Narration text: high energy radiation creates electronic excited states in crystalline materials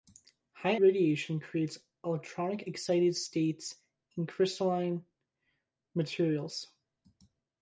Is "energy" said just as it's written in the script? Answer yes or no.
no